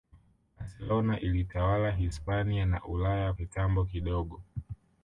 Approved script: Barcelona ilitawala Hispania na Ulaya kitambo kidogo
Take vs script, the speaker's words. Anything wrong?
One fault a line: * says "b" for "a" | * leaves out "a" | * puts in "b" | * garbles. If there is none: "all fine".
all fine